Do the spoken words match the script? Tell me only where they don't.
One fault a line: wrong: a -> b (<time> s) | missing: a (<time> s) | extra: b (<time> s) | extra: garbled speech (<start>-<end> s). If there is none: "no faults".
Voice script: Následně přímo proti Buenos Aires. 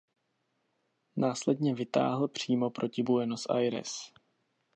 extra: vytáhl (1.8 s)